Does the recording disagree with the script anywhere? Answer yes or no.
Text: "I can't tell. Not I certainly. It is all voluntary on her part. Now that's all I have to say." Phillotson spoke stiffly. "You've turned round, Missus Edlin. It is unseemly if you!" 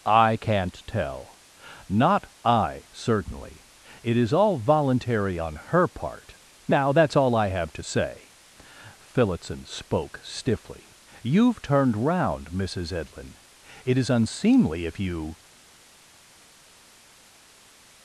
no